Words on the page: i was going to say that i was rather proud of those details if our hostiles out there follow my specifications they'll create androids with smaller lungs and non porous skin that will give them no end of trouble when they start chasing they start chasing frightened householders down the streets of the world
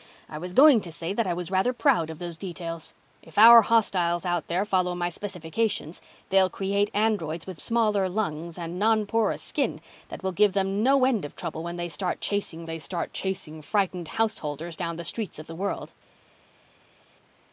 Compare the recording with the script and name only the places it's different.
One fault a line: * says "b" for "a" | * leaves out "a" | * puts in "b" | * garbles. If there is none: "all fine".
all fine